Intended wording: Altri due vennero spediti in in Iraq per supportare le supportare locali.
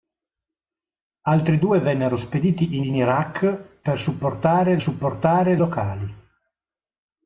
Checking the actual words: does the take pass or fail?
pass